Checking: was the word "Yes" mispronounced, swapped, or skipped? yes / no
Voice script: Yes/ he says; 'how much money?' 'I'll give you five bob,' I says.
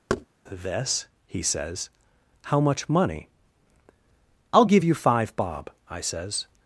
yes